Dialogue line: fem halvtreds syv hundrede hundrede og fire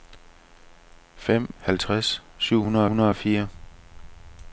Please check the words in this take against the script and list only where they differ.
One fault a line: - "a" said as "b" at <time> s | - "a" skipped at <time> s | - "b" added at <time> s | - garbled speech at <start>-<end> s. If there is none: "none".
none